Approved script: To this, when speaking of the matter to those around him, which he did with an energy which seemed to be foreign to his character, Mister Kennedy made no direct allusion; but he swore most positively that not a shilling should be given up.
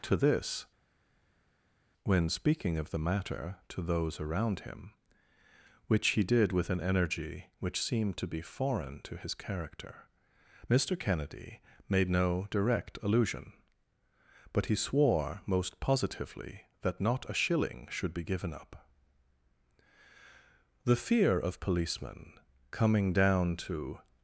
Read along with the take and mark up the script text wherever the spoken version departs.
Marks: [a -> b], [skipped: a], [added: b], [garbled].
To this, when speaking of the matter to those around him, which he did with an energy which seemed to be foreign to his character, Mister Kennedy made no direct allusion; but he swore most positively that not a shilling should be given up. [added: The fear of policemen coming down to]